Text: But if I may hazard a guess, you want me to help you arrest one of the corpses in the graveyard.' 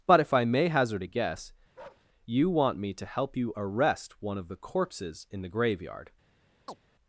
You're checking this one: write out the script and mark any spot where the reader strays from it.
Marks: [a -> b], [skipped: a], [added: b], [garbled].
But if I may hazard a guess, you want me to help you arrest one of the corpses in the graveyard.'